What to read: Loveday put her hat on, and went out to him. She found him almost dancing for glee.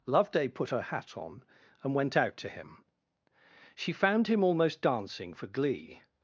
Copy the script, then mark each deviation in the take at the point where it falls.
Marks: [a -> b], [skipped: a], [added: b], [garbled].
Loveday put her hat on, and went out to him. She found him almost dancing for glee.